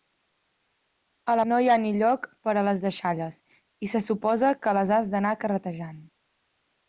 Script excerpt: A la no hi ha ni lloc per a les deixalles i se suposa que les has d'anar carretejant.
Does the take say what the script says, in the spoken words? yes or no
yes